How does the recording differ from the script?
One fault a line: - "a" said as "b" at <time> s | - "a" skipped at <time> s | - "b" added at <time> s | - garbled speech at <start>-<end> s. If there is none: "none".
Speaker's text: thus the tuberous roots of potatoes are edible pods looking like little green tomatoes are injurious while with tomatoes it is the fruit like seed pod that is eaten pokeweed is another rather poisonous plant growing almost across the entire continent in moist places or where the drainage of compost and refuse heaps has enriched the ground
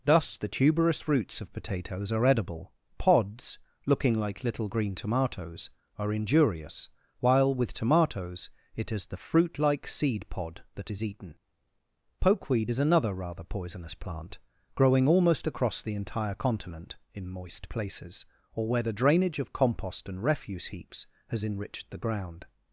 none